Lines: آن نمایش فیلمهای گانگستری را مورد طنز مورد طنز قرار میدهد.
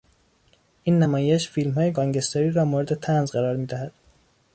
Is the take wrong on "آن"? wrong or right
wrong